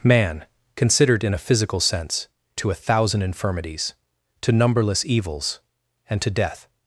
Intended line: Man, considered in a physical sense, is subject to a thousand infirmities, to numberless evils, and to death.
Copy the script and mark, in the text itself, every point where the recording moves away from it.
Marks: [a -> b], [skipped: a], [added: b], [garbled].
Man, considered in a physical sense, [skipped: is subject] to a thousand infirmities, to numberless evils, and to death.